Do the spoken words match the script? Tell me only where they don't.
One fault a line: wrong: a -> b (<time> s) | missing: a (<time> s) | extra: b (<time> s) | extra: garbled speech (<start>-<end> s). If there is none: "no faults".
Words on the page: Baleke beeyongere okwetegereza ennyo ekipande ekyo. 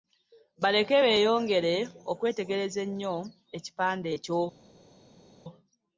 no faults